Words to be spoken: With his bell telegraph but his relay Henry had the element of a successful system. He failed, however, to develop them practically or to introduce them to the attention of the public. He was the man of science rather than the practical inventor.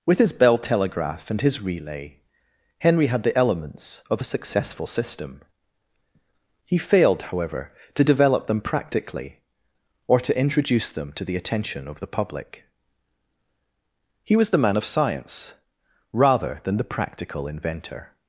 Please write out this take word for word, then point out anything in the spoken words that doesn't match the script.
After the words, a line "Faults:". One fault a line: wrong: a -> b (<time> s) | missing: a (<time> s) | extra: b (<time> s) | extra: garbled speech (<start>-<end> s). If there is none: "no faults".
With his bell telegraph and his relay Henry had the elements of a successful system. He failed, however, to develop them practically or to introduce them to the attention of the public. He was the man of science rather than the practical inventor.
Faults:
wrong: but -> and (1.3 s)
wrong: element -> elements (3.4 s)